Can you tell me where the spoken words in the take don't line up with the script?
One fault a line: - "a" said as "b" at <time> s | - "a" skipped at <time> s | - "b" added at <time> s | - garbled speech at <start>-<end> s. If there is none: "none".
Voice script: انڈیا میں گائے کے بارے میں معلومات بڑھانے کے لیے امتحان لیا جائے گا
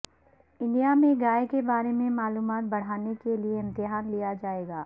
none